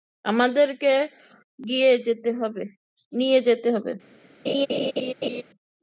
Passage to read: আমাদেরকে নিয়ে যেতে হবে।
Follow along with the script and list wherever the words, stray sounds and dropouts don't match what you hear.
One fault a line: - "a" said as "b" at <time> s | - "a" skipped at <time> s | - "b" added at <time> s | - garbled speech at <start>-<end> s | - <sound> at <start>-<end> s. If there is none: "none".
- laugh at 4.5-5.4 s